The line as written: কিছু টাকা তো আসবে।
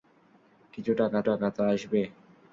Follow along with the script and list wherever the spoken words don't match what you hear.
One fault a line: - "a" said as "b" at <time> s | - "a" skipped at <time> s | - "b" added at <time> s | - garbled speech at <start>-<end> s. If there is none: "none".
- "টাকা" added at 1.3 s